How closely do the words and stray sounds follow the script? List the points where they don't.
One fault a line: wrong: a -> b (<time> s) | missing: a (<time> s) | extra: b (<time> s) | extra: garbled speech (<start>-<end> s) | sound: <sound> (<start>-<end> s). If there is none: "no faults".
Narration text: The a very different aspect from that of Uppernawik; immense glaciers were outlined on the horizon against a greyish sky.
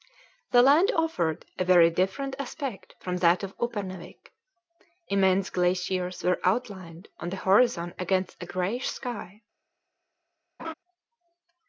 extra: land offered (0.6 s)
sound: laugh (10.6-10.7 s)